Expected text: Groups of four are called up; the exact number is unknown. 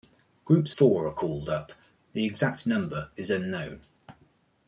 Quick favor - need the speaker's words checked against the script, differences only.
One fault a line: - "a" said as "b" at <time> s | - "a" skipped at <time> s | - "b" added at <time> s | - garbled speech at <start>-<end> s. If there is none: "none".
- "of" skipped at 0.7 s